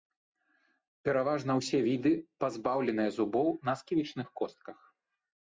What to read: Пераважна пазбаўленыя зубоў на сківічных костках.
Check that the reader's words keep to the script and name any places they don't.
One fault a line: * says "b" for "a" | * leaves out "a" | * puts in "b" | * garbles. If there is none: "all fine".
* puts in "ўсе віды"